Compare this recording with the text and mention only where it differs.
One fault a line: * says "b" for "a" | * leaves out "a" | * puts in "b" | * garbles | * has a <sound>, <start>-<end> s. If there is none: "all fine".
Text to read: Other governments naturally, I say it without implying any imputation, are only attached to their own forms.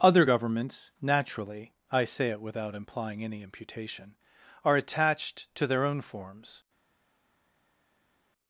* leaves out "only"